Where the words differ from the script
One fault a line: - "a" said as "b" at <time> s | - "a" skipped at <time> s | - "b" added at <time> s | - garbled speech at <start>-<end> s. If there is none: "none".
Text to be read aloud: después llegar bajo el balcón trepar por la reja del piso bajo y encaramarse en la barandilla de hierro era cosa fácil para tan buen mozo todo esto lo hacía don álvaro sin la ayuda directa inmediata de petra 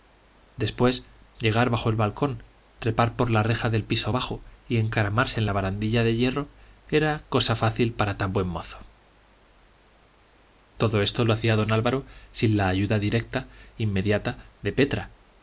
none